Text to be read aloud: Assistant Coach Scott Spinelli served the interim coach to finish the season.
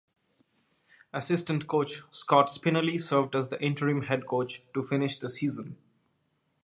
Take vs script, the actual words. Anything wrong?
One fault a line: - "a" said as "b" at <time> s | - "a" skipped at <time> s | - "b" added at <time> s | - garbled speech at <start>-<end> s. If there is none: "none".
- "as" added at 3.4 s
- "head" added at 4.0 s